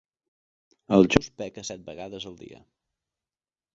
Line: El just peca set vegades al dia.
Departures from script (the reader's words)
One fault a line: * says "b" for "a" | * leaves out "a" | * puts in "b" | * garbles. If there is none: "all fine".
all fine